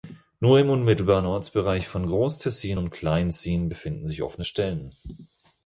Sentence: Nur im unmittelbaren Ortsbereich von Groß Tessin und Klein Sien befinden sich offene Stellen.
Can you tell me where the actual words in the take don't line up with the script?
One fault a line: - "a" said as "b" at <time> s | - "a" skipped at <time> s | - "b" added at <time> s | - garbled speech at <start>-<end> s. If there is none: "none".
none